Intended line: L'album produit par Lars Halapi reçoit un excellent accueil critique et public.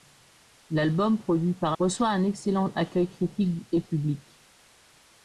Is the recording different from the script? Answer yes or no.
yes